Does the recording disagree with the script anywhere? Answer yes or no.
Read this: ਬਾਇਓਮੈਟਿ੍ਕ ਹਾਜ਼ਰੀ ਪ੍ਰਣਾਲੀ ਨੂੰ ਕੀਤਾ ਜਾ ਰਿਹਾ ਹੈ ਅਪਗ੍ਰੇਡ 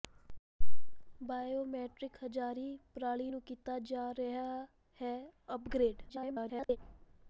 yes